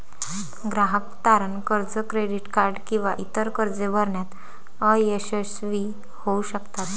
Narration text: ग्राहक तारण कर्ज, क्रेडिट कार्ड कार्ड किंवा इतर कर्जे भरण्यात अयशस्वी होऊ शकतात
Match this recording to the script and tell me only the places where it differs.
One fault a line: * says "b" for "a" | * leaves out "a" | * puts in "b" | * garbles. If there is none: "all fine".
* leaves out "कार्ड"